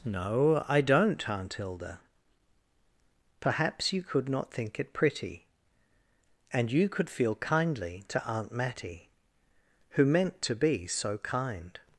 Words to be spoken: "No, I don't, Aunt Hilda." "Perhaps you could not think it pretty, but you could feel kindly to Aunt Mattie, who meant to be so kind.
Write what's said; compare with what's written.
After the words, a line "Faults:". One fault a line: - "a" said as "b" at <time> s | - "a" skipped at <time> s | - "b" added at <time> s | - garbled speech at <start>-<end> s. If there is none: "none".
"No, I don't, Aunt Hilda." "Perhaps you could not think it pretty, and you could feel kindly to Aunt Mattie, who meant to be so kind.
Faults:
- "but" said as "and" at 6.5 s